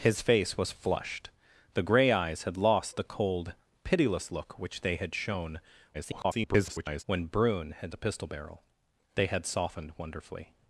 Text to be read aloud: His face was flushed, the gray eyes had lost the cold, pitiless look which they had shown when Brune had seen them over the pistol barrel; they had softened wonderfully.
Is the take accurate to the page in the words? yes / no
no